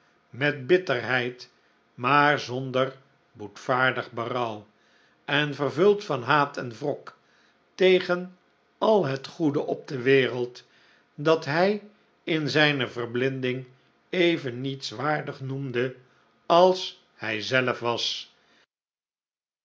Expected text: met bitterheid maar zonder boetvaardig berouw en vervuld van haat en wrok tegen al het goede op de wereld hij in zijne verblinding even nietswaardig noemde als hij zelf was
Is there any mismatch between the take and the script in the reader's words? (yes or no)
yes